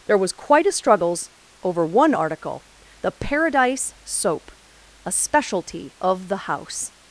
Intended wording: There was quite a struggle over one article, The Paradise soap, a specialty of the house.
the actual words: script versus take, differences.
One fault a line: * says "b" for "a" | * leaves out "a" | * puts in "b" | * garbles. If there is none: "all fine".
* says "struggles" for "struggle"